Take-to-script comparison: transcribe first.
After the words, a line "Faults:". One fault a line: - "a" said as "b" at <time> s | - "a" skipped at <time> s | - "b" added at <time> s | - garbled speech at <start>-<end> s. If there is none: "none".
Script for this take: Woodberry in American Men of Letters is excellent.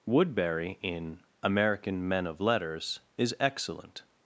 Woodberry in American Men of Letters is excellent.
Faults:
none